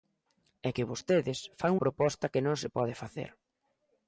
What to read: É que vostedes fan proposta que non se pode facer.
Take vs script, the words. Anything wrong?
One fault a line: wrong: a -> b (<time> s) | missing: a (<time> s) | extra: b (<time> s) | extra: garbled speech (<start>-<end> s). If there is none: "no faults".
no faults